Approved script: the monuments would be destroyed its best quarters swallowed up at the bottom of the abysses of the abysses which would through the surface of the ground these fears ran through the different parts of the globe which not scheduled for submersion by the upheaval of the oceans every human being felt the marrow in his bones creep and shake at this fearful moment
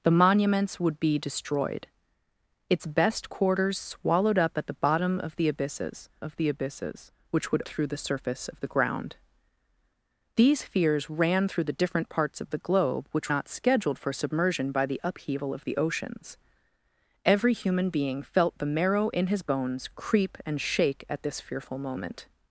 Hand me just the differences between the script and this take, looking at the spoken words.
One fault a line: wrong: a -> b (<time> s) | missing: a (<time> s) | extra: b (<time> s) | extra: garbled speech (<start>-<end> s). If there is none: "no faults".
no faults